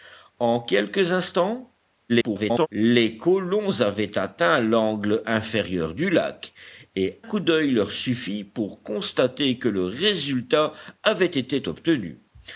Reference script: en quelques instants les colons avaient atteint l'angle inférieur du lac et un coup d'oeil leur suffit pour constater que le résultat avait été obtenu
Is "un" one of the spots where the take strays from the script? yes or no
yes